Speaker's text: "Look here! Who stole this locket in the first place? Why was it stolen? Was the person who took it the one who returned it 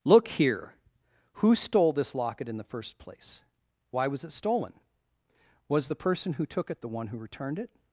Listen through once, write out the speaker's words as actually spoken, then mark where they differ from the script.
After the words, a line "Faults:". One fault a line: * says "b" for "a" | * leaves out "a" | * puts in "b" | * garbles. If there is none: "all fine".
"Look here! Who stole this locket in the first place? Why was it stolen? Was the person who took it the one who returned it
Faults:
all fine